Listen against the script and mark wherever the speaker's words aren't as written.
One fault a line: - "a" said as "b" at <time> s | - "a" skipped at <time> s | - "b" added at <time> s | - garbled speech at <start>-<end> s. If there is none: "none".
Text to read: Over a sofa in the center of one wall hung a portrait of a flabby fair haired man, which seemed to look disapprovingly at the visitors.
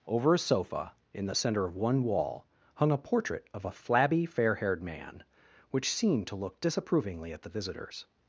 none